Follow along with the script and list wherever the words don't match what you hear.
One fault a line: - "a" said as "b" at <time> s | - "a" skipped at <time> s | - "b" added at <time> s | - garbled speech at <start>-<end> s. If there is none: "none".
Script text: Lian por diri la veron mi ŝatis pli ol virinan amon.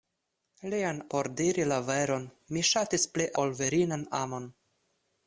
none